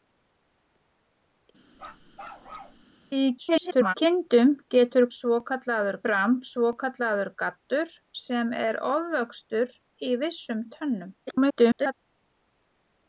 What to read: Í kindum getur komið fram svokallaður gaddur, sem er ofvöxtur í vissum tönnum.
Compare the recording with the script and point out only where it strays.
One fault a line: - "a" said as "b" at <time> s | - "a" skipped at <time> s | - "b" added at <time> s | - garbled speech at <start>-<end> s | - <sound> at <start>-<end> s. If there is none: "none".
- bark at 1.7-2.8 s
- garbled speech at 3.4-3.9 s
- "komið" said as "svokallaður" at 5.2 s
- garbled speech at 11.3-11.9 s